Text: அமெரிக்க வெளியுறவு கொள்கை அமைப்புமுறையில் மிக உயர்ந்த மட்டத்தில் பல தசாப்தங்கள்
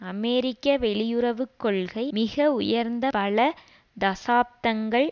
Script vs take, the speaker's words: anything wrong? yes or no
yes